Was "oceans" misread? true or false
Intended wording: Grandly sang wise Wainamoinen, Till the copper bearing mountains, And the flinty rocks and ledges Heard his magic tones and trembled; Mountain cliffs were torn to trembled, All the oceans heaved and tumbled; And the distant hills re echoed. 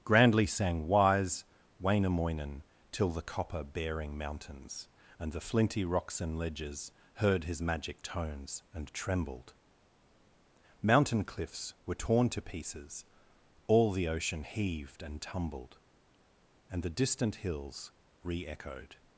true